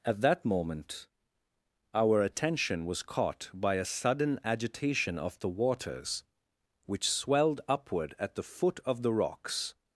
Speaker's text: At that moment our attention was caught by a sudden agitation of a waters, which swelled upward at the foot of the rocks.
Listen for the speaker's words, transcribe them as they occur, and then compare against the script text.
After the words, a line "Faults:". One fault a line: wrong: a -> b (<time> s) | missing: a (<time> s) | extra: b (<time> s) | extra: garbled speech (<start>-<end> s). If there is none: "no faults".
At that moment our attention was caught by a sudden agitation of the waters, which swelled upward at the foot of the rocks.
Faults:
wrong: a -> the (5.4 s)